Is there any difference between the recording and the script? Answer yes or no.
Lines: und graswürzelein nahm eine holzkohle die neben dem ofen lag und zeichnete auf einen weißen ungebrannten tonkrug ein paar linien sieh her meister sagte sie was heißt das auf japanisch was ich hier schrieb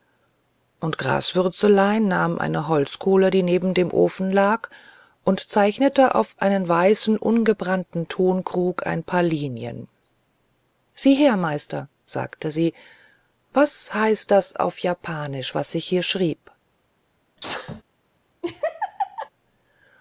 no